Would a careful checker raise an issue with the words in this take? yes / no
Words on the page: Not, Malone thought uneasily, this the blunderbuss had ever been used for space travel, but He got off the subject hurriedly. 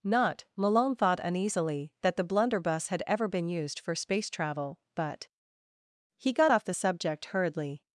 yes